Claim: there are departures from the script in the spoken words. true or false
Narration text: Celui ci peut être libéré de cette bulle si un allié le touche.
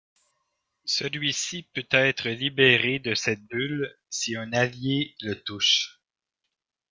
false